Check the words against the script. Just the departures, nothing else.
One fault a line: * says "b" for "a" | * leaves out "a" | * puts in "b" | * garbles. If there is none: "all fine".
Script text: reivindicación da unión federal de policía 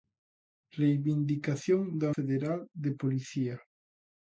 * leaves out "unión"